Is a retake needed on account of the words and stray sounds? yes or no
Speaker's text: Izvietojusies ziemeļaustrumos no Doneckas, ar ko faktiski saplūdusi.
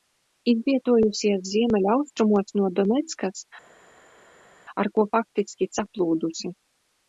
no